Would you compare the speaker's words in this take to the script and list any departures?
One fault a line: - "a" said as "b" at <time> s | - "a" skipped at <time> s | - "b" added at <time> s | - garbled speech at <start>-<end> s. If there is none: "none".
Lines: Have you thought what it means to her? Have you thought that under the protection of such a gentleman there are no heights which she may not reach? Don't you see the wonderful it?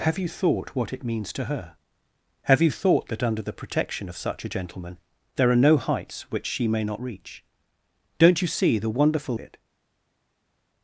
none